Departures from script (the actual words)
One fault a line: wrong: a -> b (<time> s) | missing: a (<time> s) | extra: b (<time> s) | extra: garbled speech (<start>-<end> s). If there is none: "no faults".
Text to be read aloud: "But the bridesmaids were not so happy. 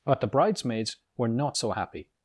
no faults